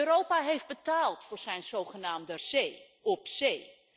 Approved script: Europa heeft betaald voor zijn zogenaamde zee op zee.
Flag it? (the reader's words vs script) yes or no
no